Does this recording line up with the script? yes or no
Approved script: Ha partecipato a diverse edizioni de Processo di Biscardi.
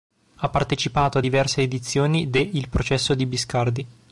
no